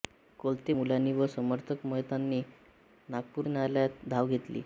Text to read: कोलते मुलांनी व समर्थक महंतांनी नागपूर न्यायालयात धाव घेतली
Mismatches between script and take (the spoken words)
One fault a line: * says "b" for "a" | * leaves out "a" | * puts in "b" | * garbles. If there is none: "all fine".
all fine